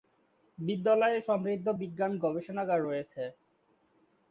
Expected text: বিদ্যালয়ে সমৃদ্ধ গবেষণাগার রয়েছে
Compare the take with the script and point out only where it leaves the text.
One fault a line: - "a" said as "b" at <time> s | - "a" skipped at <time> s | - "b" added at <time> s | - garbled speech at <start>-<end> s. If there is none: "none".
- "বিজ্ঞান" added at 1.8 s